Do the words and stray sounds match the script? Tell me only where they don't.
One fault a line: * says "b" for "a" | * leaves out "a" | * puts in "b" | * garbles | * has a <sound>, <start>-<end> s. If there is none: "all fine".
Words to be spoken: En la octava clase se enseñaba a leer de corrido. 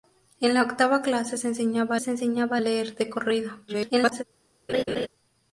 * puts in "se enseñaba"
* garbles
* has a laugh, 4.7-5.1 s